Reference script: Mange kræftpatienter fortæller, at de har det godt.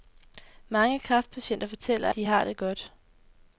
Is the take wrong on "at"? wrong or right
wrong